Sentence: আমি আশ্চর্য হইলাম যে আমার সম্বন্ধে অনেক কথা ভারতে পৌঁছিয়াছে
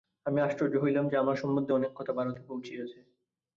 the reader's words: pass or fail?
pass